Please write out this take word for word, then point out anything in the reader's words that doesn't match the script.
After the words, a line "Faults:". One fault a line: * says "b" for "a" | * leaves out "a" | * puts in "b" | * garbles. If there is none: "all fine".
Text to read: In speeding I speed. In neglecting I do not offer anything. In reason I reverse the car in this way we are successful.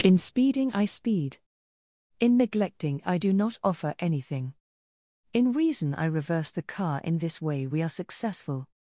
In speeding I speed. In neglecting I do not offer anything. In reason I reverse the car in this way we are successful.
Faults:
all fine